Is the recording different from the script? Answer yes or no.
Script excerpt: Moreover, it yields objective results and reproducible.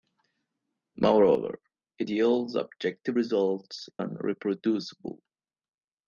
no